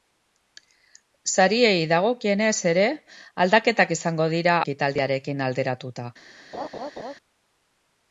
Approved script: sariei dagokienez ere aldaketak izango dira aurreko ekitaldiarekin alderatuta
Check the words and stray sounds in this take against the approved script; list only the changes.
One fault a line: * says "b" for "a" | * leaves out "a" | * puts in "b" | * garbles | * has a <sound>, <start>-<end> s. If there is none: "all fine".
* leaves out "aurreko"
* has a laugh, 6.5-7.2 s